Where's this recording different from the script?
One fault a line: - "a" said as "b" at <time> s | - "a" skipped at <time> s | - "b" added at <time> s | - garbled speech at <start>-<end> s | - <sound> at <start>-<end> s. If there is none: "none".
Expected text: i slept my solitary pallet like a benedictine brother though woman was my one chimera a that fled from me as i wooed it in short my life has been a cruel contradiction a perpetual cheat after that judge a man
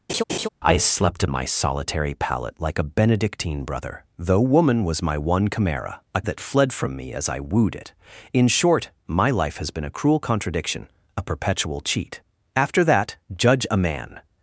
- laugh at 0.1-0.5 s